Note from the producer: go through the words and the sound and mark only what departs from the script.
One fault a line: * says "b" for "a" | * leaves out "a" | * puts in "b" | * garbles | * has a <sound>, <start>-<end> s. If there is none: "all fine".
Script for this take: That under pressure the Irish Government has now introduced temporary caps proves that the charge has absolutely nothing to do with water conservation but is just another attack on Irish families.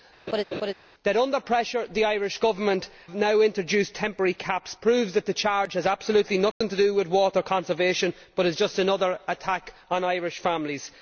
* has a laugh, 0.3-0.7 s
* leaves out "has"
* has a dropout, 6.5-6.6 s